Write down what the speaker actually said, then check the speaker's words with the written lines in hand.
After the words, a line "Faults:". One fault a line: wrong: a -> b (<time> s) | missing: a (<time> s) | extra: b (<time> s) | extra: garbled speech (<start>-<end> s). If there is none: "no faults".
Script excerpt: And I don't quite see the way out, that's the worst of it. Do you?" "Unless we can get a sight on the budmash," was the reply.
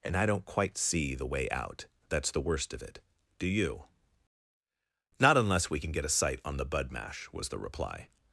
And I don't quite see the way out, that's the worst of it. Do you?" "Not unless we can get a sight on the budmash," was the reply.
Faults:
extra: Not (5.2 s)